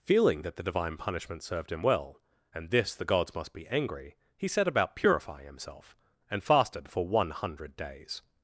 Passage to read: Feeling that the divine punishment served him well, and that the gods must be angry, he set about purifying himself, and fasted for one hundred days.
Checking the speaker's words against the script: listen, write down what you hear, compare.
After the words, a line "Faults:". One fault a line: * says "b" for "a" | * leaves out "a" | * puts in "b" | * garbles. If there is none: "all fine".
Feeling that the divine punishment served him well, and this the gods must be angry, he set about purifying himself, and fasted for one hundred days.
Faults:
* says "this" for "that"